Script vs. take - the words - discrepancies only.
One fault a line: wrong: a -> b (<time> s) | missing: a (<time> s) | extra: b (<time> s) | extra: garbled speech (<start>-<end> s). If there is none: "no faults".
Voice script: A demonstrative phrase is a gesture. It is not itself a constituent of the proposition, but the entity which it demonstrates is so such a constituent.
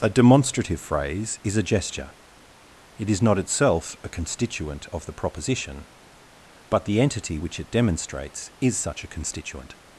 missing: so (8.8 s)